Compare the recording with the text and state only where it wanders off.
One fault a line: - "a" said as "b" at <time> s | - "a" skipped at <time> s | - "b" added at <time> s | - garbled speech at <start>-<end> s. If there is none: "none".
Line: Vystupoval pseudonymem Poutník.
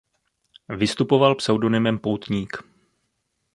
none